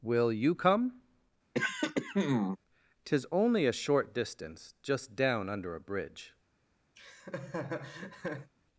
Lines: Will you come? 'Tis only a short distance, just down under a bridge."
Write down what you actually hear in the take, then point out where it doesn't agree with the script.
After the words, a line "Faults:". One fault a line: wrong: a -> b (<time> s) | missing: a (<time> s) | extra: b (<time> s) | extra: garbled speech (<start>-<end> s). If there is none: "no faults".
Will you come? 'Tis only a short distance, just down under a bridge."
Faults:
no faults